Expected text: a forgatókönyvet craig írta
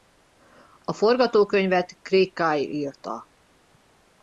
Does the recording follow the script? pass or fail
fail